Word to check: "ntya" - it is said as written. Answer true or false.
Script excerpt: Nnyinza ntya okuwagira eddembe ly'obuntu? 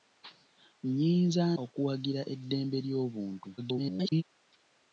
false